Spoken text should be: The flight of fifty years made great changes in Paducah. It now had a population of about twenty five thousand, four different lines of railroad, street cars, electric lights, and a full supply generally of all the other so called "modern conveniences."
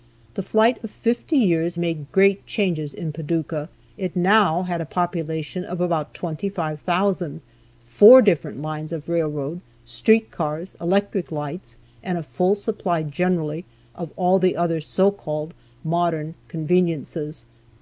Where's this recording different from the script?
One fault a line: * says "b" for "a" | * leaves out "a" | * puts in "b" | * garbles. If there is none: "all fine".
all fine